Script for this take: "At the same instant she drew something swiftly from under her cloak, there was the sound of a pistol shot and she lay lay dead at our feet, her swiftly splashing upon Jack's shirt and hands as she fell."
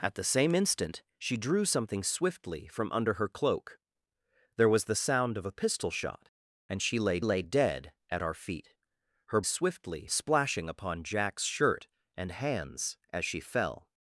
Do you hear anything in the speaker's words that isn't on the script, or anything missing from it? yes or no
no